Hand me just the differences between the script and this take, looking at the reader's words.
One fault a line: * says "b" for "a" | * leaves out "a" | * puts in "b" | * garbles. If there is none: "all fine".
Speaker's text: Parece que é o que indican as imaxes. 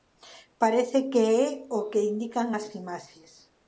all fine